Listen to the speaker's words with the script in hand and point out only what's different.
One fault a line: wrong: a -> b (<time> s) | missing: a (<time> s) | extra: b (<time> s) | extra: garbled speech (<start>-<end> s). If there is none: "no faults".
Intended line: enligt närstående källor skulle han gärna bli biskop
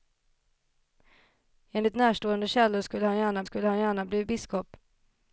extra: skulle han gärna (3.4 s)